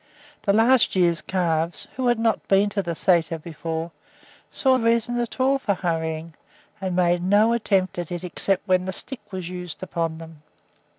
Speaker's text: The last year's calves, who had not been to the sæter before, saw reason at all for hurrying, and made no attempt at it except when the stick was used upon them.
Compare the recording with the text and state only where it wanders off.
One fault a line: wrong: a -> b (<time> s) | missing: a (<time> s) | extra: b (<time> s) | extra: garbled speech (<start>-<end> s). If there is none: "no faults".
no faults